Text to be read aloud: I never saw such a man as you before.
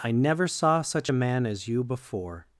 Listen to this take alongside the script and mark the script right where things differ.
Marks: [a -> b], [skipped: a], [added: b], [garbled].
I never saw such a man as you before.